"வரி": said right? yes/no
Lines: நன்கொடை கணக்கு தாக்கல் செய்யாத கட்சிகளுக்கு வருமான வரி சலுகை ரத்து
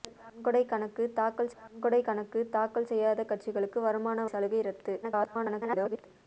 no